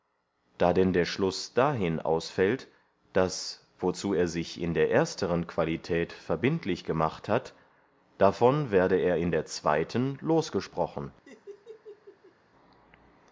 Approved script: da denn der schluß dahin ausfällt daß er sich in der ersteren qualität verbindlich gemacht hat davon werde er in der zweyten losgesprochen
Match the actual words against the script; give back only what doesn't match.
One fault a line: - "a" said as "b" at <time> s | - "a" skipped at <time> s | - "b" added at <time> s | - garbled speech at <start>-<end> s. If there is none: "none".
- "wozu" added at 3.8 s